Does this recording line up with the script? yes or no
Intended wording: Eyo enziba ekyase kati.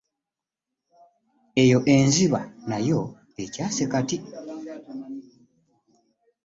no